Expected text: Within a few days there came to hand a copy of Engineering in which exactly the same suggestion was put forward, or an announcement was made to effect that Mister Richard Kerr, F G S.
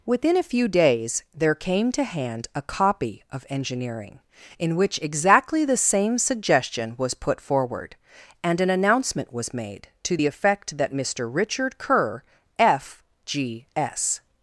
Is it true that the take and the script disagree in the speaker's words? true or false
true